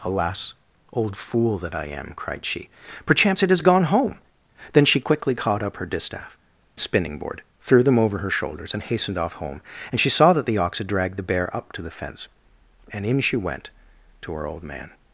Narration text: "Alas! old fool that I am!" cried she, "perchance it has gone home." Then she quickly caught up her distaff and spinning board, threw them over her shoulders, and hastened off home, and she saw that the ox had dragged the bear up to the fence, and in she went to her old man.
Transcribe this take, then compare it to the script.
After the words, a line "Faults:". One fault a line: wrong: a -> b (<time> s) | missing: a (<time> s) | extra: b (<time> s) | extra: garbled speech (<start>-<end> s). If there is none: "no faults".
"Alas! old fool that I am!" cried she, "perchance it has gone home." Then she quickly caught up her distaff spinning board, threw them over her shoulders, and hastened off home, and she saw that the ox had dragged the bear up to the fence, and in she went to her old man.
Faults:
missing: and (6.4 s)